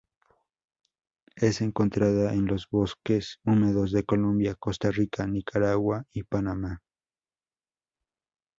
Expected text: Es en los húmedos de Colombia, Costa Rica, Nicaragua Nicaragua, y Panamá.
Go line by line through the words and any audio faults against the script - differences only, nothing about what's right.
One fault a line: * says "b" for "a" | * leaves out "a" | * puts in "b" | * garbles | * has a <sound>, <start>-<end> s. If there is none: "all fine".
* puts in "encontrada"
* puts in "bosques"
* leaves out "Nicaragua"